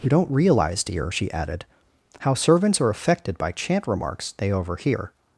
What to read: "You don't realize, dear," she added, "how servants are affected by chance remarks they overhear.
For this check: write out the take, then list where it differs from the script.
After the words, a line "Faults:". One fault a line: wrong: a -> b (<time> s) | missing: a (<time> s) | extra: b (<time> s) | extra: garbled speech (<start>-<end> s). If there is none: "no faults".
"You don't realize, dear," she added, "how servants are affected by chant remarks they overhear.
Faults:
wrong: chance -> chant (3.5 s)